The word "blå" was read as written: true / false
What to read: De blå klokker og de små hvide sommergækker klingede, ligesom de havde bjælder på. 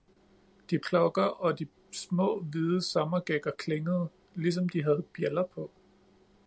false